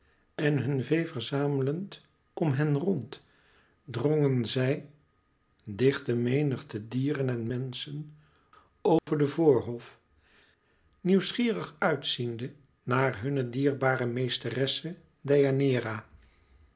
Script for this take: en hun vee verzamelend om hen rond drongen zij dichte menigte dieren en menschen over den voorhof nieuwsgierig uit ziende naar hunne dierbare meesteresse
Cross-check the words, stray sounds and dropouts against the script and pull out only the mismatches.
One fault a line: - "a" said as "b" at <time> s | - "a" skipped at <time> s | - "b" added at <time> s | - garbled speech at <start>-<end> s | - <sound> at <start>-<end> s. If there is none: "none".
- dropout at 9.0-9.1 s